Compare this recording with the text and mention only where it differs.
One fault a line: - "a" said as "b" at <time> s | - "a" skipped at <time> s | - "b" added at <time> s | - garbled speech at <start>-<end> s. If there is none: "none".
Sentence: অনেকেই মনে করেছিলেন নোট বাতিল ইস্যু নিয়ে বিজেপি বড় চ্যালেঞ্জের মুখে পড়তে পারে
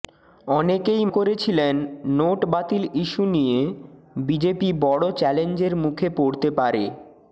- "মনে" skipped at 1.0 s